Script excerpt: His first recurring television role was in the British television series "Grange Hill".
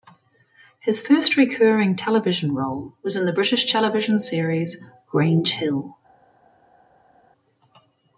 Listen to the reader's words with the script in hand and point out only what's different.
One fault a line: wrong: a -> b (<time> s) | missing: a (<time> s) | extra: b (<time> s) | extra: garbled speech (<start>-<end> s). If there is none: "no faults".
no faults